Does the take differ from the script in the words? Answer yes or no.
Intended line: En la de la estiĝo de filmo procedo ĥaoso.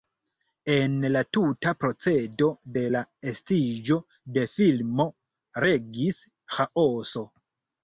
yes